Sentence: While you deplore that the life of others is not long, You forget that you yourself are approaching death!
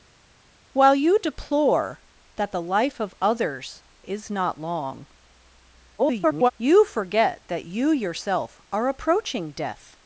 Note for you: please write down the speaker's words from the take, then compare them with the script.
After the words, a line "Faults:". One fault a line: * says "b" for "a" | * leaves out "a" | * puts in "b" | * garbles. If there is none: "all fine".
While you deplore that the life of others is not long, [garbled] You forget that you yourself are approaching death!
Faults:
* garbles